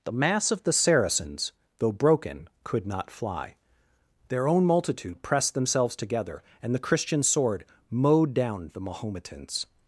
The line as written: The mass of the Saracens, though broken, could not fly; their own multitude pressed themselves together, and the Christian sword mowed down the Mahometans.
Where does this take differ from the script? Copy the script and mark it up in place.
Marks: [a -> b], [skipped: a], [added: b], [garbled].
The mass of the Saracens, though broken, could not fly; their own multitude pressed themselves together, and the Christian sword mowed down the Mahometans.